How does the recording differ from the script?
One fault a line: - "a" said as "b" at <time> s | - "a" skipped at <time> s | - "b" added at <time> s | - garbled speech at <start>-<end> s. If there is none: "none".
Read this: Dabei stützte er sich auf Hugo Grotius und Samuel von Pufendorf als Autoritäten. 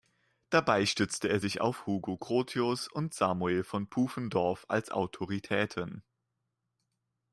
none